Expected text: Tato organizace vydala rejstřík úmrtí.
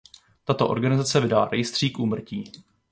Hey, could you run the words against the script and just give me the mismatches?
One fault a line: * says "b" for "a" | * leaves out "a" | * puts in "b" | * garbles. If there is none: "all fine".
all fine